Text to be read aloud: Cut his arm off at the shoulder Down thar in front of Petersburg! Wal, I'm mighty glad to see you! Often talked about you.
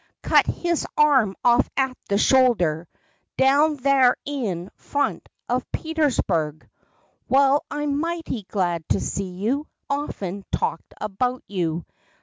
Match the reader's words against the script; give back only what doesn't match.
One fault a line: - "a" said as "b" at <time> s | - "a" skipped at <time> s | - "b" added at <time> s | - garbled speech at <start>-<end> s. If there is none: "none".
none